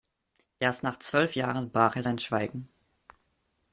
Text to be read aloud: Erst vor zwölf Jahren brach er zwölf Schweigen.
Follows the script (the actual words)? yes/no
no